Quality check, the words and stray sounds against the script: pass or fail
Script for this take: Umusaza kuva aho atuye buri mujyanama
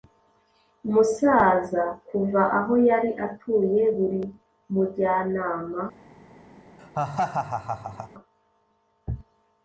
fail